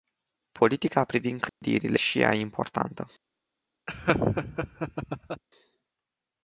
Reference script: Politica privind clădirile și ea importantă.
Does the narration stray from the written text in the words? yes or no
no